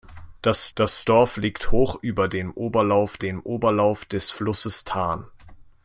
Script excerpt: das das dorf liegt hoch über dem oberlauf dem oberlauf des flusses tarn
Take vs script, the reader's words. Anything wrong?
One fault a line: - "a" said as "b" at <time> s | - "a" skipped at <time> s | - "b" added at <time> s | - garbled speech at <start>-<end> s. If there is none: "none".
none